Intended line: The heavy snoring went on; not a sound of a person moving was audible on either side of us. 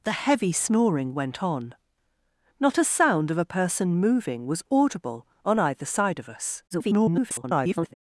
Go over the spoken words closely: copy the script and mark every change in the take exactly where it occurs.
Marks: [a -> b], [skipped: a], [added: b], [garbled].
The heavy snoring went on; not a sound of a person moving was audible on either side of us. [garbled]